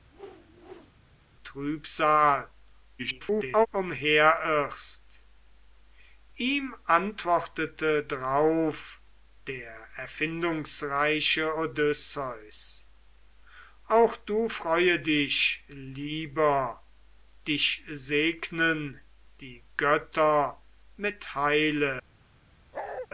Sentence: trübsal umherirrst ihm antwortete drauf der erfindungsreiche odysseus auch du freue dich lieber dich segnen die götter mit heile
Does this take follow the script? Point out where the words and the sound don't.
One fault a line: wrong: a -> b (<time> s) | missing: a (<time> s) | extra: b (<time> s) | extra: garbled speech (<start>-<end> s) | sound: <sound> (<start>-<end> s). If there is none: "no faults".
sound: whoosh (0.1-0.9 s)
extra: garbled speech (3.0-3.7 s)
sound: bark (22.7-23.1 s)